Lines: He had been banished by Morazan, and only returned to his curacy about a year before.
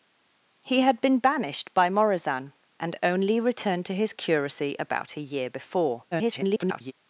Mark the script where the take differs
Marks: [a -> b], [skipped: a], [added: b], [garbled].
He had been banished by Morazan, and only returned to his curacy about a year before. [garbled]